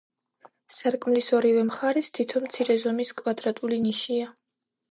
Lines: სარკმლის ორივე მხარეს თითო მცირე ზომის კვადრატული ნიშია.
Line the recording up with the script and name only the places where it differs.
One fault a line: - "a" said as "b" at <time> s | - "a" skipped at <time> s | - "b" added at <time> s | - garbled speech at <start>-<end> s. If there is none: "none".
none